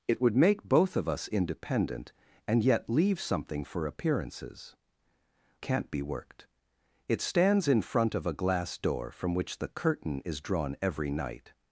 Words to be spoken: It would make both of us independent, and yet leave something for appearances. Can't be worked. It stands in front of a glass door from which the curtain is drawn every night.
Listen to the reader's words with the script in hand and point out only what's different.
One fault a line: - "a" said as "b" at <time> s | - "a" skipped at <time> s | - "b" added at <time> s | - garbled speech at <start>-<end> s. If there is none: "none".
none